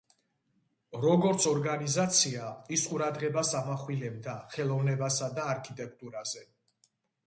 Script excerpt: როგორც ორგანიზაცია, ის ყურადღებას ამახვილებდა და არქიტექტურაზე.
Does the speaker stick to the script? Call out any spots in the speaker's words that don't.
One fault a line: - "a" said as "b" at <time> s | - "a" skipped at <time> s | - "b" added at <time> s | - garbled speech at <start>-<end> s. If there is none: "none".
- "ხელოვნებასა" added at 4.6 s